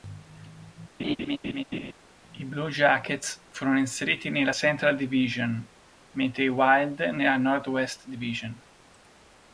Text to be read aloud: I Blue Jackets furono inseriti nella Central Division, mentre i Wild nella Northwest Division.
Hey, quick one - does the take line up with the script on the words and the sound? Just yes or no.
no